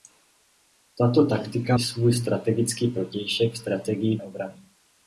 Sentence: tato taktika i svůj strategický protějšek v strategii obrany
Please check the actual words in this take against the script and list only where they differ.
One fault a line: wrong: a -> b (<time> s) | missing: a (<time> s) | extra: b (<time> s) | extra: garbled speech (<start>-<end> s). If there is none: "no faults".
no faults